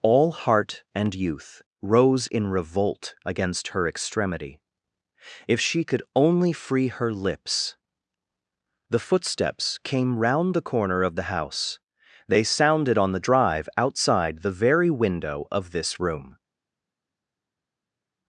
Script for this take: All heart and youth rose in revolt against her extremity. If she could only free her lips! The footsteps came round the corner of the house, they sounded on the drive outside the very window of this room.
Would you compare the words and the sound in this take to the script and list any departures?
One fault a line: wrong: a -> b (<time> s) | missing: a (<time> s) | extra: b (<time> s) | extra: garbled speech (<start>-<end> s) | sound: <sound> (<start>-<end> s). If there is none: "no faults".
no faults